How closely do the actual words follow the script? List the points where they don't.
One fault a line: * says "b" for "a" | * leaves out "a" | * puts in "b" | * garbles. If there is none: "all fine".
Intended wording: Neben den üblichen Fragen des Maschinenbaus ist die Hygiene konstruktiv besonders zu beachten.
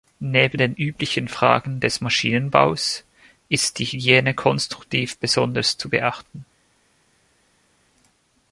all fine